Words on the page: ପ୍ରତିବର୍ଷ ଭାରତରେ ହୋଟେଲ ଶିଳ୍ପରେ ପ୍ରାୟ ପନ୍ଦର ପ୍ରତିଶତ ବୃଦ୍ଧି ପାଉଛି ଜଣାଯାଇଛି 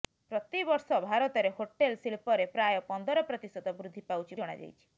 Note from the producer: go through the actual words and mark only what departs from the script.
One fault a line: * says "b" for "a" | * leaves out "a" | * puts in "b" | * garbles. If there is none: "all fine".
all fine